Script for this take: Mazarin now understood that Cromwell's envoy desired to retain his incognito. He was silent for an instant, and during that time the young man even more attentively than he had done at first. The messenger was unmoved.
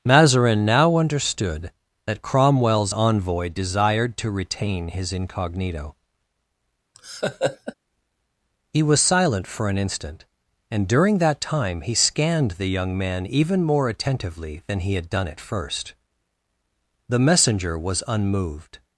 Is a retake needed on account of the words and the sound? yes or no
yes